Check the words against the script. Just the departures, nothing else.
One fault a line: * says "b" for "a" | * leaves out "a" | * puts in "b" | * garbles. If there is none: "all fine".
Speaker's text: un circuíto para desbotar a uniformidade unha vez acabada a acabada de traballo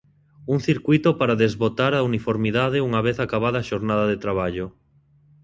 * says "xornada" for "acabada"